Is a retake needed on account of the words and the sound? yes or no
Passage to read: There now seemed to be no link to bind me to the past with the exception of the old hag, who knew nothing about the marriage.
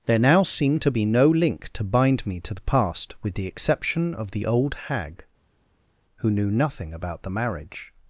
no